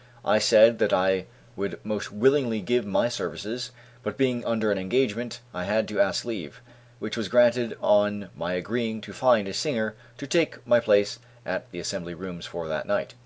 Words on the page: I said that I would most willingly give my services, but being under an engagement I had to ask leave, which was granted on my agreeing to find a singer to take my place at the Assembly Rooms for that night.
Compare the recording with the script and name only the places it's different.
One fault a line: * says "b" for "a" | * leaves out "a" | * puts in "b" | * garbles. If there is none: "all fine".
all fine